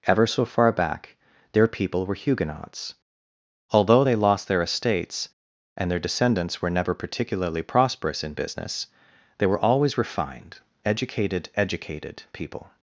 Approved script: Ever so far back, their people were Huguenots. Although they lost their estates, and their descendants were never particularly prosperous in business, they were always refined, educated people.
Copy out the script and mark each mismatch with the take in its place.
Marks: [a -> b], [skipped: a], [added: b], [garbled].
Ever so far back, their people were Huguenots. Although they lost their estates, and their descendants were never particularly prosperous in business, they were always refined, educated [added: educated] people.